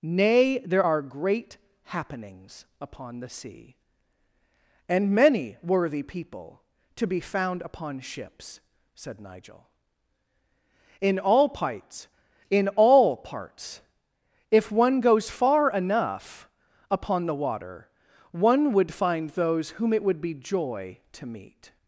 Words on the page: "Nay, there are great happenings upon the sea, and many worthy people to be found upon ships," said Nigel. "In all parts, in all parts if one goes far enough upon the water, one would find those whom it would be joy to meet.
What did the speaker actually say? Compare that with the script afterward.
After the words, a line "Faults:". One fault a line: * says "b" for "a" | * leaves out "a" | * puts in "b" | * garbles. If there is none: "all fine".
"Nay, there are great happenings upon the sea, and many worthy people to be found upon ships," said Nigel. "In all parts, in all parts if one goes far enough upon the water, one would find those whom it would be joy to meet.
Faults:
all fine